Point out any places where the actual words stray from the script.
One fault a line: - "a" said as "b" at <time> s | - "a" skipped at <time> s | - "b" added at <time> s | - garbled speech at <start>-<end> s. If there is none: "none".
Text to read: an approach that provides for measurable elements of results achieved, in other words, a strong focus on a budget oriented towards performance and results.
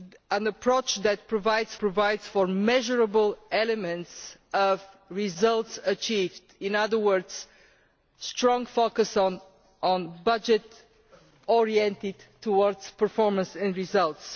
- "provides" added at 1.8 s